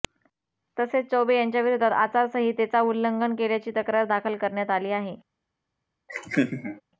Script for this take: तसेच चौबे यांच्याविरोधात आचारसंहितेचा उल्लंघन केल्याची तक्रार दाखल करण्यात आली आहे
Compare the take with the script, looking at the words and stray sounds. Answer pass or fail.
fail